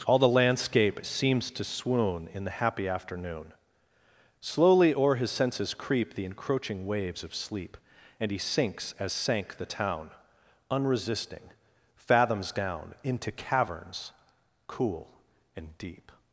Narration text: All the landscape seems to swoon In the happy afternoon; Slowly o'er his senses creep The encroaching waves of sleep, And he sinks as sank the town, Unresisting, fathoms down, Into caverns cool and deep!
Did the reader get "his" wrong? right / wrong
right